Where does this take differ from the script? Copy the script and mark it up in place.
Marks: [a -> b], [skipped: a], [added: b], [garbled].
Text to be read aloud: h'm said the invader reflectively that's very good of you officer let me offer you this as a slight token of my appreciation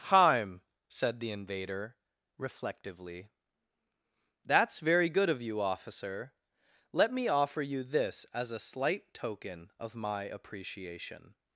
h'm said the invader reflectively that's very good of you officer let me offer you this as a slight token of my appreciation